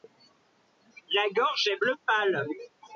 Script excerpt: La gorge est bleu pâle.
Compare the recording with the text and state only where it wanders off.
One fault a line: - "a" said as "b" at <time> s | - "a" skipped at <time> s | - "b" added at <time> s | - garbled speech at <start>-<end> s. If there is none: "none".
none